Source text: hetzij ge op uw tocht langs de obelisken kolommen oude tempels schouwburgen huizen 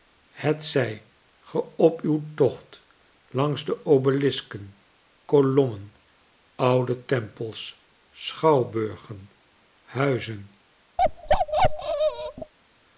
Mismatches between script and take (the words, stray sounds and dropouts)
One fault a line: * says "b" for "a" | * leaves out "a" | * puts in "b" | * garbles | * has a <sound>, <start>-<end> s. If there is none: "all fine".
* has a bark, 11.0-12.5 s